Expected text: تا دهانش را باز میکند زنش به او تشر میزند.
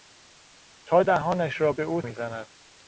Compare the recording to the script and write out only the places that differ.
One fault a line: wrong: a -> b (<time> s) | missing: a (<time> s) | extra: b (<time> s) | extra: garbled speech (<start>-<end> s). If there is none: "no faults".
missing: باز میکند زنش (1.7 s)
missing: تشر (2.0 s)